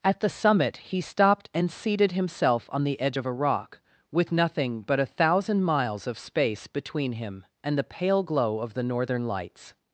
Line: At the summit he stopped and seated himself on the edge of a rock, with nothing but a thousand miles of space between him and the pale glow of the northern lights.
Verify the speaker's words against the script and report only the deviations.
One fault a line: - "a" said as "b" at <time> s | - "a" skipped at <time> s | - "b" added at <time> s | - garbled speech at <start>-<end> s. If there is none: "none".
none